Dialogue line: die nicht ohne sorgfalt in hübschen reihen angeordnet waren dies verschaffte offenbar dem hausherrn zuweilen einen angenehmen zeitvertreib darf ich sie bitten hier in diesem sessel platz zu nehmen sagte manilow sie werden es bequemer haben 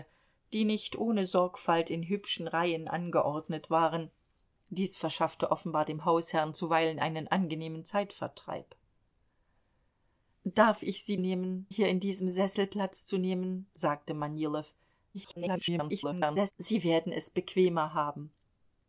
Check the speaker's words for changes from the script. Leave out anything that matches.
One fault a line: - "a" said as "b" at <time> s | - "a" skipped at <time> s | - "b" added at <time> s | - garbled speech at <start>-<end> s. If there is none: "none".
- "bitten" said as "nehmen" at 11.2 s
- garbled speech at 15.1-16.5 s